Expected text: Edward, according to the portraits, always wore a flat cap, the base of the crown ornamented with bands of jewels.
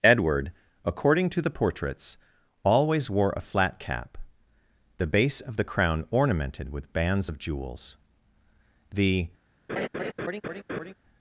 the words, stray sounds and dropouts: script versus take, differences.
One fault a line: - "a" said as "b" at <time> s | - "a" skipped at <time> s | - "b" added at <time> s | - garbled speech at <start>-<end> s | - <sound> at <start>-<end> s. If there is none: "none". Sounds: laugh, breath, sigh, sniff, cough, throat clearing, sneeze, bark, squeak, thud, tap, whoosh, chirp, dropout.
- "The" added at 8.9 s
- laugh at 9.7-10.9 s